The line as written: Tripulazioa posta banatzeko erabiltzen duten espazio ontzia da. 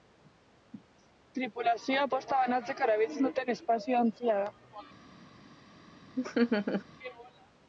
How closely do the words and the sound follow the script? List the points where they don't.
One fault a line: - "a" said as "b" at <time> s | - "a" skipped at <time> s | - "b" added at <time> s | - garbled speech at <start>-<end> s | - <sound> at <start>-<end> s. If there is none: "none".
- laugh at 6.2-6.8 s